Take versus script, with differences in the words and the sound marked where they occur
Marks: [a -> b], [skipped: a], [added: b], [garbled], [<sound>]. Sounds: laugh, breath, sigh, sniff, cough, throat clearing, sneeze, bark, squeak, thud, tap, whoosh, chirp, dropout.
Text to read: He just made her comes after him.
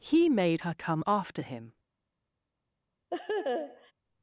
He [skipped: just] made her [comes -> come] after him. [laugh]